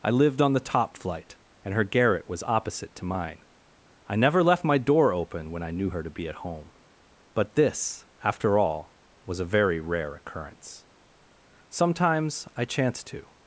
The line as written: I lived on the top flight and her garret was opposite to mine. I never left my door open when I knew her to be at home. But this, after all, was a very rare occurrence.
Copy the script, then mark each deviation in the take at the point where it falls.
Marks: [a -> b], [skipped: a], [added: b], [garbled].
I lived on the top flight and her garret was opposite to mine. I never left my door open when I knew her to be at home. But this, after all, was a very rare occurrence. [added: Sometimes I chanced to]